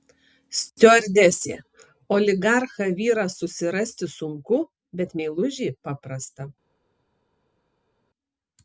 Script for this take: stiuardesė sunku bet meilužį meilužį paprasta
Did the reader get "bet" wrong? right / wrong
right